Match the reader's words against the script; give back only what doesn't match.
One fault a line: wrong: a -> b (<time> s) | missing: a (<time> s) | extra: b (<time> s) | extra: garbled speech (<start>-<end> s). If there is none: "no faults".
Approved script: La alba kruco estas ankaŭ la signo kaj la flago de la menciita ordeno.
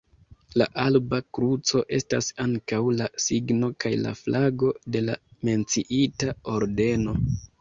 no faults